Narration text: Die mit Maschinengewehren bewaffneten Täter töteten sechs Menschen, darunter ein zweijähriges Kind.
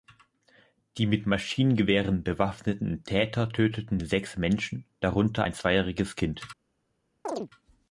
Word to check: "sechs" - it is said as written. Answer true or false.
true